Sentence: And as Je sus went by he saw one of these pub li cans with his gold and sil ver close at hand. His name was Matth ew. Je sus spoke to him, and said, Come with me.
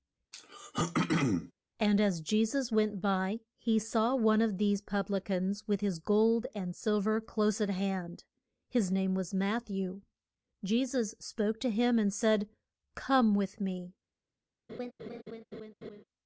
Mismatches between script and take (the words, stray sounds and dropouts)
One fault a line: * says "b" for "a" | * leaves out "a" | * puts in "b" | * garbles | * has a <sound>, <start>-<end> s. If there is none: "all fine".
* has a throat clearing, 0.3-1.5 s
* has a laugh, 14.7-16.0 s